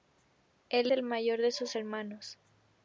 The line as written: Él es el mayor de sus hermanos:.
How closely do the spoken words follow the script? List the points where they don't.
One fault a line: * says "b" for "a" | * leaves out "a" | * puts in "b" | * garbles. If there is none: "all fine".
* leaves out "es"